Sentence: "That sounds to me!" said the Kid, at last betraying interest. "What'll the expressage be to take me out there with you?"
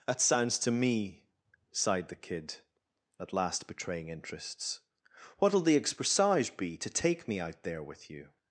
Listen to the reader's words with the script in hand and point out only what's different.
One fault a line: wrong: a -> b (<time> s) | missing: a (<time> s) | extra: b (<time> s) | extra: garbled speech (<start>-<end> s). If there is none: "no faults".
wrong: said -> sighed (1.7 s)
wrong: interest -> interests (4.1 s)